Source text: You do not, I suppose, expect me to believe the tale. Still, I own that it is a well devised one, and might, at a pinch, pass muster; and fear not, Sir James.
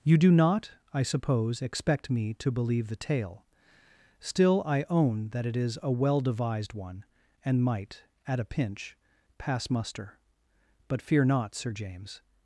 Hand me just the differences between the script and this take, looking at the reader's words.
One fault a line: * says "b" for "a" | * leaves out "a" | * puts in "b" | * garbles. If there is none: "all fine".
* says "but" for "and"